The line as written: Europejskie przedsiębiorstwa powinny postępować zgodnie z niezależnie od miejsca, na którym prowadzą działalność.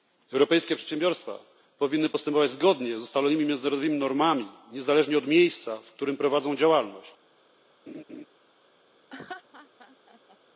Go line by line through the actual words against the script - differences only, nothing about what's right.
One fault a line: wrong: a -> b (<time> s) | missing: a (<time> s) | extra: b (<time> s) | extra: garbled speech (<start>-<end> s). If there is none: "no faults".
extra: ustalonymi międzynarodowymi normami (3.0 s)
wrong: na -> w (5.8 s)